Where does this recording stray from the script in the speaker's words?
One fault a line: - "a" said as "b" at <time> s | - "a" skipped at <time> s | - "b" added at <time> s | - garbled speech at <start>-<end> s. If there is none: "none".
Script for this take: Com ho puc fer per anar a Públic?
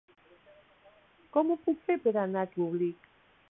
none